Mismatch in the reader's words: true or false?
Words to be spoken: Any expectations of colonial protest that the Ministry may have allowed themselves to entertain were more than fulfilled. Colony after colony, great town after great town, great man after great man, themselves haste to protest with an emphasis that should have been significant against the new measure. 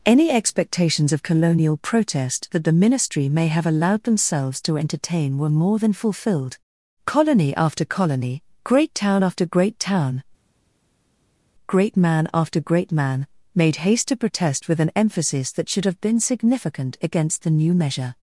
true